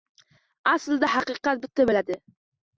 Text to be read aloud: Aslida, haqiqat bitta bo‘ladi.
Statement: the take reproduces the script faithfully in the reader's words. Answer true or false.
true